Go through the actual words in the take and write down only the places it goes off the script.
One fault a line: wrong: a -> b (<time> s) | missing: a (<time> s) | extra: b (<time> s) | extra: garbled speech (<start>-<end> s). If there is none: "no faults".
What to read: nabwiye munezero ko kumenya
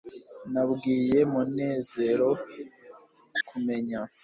no faults